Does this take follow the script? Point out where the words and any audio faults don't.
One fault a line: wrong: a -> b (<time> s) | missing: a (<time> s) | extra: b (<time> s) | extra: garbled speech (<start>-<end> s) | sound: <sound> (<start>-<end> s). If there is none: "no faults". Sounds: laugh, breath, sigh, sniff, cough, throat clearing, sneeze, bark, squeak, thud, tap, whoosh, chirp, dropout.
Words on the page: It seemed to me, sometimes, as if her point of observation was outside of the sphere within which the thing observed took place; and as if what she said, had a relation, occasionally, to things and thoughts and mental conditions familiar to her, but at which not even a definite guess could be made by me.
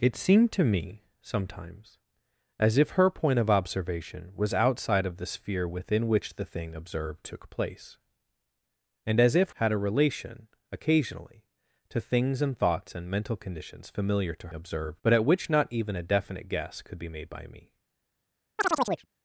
missing: what she said (9.6 s)
wrong: her -> observed (14.5 s)
sound: chirp (18.6-19.1 s)